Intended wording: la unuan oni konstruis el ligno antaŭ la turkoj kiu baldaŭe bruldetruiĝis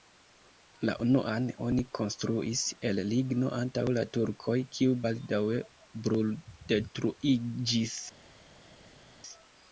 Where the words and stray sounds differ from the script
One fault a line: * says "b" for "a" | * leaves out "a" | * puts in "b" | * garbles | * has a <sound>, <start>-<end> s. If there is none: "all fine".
all fine